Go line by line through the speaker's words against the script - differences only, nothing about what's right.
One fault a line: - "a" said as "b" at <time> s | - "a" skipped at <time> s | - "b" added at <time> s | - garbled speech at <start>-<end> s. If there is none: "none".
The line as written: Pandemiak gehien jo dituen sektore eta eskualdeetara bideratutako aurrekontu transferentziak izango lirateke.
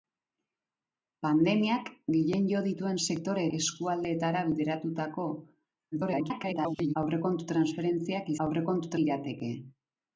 - "eta" skipped at 3.4 s
- garbled speech at 5.9-6.9 s
- "izango" said as "aurrekontu" at 8.5 s